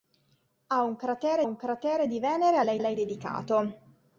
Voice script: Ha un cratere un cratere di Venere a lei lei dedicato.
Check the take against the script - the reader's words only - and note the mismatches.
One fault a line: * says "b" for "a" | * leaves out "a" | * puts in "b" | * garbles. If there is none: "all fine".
all fine